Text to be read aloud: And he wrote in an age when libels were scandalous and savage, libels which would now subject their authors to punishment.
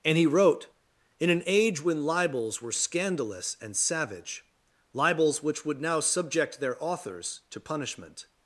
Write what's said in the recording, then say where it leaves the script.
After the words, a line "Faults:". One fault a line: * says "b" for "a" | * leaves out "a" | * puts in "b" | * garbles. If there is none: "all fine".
And he wrote in an age when libels were scandalous and savage, libels which would now subject their authors to punishment.
Faults:
all fine